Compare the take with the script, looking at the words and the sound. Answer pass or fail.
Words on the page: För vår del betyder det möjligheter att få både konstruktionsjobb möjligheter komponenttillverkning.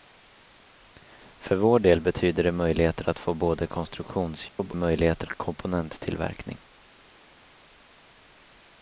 fail